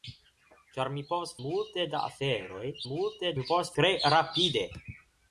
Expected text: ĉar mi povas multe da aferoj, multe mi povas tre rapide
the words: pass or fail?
pass